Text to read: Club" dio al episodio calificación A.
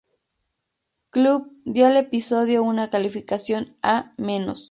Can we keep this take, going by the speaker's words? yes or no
no